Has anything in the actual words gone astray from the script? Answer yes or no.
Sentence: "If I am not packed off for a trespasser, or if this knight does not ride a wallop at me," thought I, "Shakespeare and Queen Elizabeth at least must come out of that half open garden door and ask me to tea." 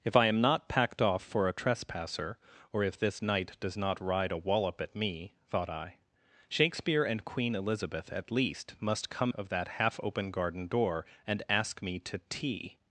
yes